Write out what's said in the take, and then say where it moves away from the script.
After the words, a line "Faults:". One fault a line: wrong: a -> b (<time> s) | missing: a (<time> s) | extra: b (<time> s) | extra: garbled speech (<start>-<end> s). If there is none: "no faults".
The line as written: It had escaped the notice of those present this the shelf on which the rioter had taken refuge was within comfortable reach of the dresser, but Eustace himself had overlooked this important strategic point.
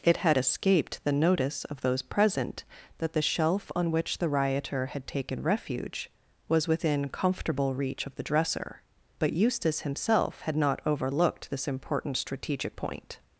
It had escaped the notice of those present that the shelf on which the rioter had taken refuge was within comfortable reach of the dresser, but Eustace himself had not overlooked this important strategic point.
Faults:
wrong: this -> that (3.0 s)
extra: not (10.6 s)